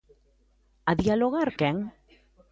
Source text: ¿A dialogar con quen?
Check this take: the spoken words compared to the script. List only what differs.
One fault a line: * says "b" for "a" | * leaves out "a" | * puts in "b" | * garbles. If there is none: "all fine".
* leaves out "con"